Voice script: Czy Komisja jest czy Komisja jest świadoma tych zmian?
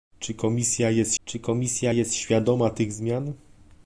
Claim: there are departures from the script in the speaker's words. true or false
false